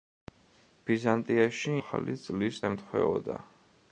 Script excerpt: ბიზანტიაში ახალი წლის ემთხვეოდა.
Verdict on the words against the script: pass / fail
pass